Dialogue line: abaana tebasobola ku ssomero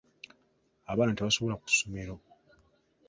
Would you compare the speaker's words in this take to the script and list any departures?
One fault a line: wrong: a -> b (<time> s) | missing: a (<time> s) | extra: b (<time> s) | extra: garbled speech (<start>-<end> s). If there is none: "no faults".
no faults